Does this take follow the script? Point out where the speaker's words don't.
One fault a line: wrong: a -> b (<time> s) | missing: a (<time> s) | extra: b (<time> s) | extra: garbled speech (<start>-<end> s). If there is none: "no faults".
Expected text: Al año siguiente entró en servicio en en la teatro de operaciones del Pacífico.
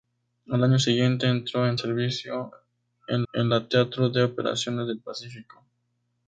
no faults